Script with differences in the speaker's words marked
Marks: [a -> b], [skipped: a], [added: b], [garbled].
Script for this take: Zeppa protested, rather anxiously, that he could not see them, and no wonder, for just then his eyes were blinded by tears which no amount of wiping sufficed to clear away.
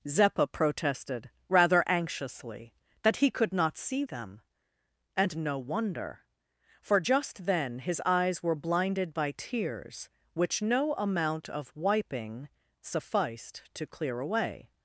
Zeppa protested, rather anxiously, that he could not see them, and no wonder, for just then his eyes were blinded by tears which no amount of wiping sufficed to clear away.